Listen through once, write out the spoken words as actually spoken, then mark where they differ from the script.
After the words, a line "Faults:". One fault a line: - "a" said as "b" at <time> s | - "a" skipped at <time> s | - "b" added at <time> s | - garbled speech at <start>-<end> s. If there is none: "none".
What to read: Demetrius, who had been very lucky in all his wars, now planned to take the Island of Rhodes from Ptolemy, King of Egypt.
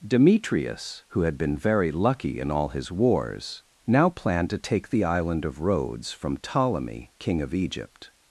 Demetrius, who had been very lucky in all his wars, now planned to take the Island of Rhodes from Ptolemy, King of Egypt.
Faults:
none